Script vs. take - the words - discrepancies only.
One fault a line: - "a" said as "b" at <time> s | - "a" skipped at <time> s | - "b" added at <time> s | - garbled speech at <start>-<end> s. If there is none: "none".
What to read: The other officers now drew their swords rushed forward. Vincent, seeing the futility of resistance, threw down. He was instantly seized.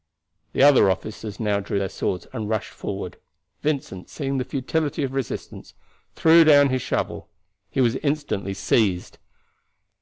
- "and" added at 2.3 s
- "his shovel" added at 6.7 s